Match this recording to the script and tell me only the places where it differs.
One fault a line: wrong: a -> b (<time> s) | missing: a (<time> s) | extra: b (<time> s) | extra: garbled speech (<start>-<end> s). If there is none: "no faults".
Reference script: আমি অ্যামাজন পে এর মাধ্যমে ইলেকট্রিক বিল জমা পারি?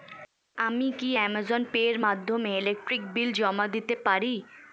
extra: কি (1.0 s)
extra: দিতে (3.7 s)